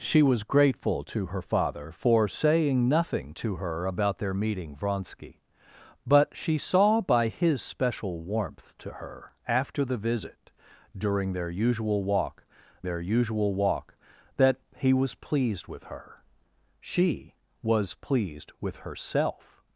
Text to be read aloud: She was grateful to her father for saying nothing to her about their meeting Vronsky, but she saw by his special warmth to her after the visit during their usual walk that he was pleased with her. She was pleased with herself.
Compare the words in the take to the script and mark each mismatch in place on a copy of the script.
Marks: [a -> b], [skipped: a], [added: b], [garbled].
She was grateful to her father for saying nothing to her about their meeting Vronsky, but she saw by his special warmth to her after the visit during their usual walk [added: their usual walk] that he was pleased with her. She was pleased with herself.